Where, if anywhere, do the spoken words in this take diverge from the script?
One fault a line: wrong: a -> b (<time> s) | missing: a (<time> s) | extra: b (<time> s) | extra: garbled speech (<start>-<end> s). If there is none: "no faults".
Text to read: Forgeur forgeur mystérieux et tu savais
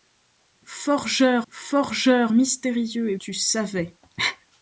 no faults